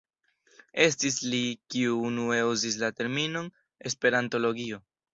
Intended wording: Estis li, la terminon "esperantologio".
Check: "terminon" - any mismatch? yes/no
no